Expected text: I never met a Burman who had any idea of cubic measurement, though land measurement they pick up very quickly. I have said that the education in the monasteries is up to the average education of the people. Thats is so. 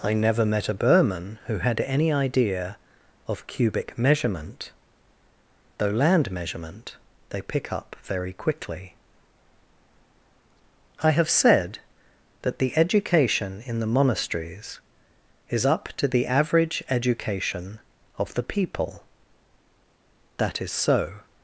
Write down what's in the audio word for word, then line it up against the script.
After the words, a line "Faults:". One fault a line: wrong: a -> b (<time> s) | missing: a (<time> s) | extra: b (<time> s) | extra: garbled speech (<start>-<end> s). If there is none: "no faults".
I never met a Burman who had any idea of cubic measurement, though land measurement they pick up very quickly. I have said that the education in the monasteries is up to the average education of the people. That is so.
Faults:
wrong: Thats -> That (20.4 s)